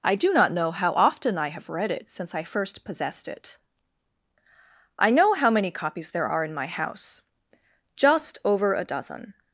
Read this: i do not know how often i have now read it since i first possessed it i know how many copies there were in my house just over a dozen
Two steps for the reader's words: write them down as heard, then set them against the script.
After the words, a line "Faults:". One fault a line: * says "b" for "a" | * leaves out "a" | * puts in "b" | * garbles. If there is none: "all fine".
i do not know how often i have read it since i first possessed it i know how many copies there are in my house just over a dozen
Faults:
* leaves out "now"
* says "are" for "were"